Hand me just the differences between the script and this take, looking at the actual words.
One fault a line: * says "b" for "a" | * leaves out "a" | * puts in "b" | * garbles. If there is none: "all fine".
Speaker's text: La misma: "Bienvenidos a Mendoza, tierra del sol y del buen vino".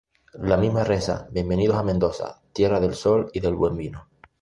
* puts in "reza"